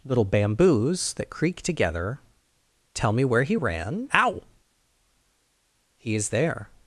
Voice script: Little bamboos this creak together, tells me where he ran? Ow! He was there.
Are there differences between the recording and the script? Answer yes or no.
yes